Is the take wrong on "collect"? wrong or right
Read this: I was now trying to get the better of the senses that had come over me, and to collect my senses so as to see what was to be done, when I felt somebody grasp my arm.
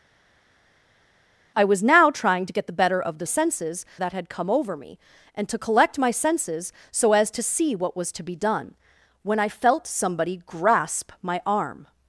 right